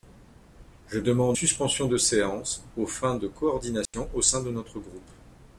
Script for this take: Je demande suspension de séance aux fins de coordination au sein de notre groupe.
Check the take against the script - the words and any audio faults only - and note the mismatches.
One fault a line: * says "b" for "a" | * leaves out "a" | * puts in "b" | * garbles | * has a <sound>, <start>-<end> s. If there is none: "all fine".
* has a dropout, 3.9-3.9 s